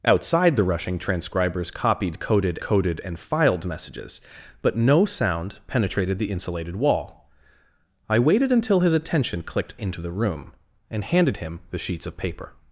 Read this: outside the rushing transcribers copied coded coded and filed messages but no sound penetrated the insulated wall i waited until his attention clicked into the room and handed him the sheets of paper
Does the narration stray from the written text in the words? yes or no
no